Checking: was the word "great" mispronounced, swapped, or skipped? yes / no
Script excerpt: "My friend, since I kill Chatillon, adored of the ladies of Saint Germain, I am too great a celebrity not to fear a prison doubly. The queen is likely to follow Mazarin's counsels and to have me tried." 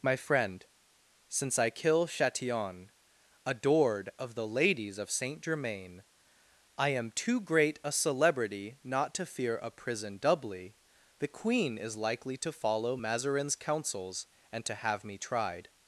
no